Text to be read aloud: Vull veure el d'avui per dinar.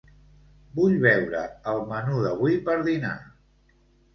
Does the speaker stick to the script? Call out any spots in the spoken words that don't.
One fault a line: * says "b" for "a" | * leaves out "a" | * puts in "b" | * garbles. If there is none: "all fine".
* puts in "menú"